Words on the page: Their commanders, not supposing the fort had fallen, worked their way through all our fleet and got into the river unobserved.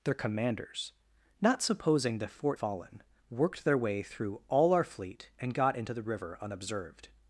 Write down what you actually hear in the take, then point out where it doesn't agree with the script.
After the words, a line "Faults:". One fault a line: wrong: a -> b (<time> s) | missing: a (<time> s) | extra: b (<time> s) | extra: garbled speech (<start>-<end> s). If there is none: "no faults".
Their commanders, not supposing the fort fallen, worked their way through all our fleet and got into the river unobserved.
Faults:
missing: had (2.6 s)